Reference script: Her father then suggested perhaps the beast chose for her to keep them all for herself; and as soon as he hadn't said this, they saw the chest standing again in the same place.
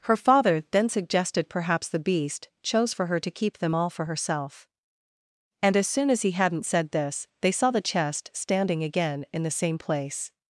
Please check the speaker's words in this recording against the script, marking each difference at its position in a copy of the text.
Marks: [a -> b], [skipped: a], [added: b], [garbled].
Her father then suggested perhaps the beast chose for her to keep them all for herself; and as soon as he hadn't said this, they saw the chest standing again in the same place.